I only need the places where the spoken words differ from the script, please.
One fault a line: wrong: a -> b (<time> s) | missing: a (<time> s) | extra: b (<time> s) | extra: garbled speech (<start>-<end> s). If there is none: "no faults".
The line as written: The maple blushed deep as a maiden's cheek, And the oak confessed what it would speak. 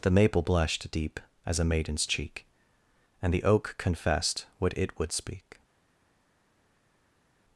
no faults